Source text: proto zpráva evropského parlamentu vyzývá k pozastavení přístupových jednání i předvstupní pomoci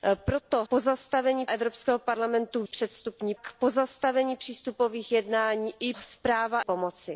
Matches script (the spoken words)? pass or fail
fail